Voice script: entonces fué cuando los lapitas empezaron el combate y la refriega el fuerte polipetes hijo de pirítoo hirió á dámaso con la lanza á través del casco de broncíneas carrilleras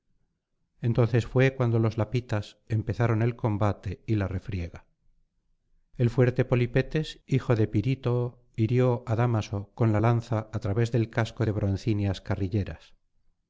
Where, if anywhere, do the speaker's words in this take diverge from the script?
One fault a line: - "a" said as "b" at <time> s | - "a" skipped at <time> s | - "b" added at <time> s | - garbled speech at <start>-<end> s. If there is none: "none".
none